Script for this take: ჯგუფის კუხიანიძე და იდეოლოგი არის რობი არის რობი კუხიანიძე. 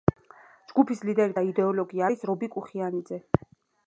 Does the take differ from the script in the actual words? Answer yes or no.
yes